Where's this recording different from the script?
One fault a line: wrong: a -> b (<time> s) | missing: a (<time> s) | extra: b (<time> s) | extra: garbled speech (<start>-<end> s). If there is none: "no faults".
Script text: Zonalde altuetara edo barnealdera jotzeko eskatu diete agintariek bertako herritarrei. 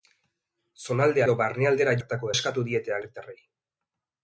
missing: altuetara (1.2 s)
wrong: jotzeko -> bertako (2.0 s)
missing: agintariek bertako (3.0 s)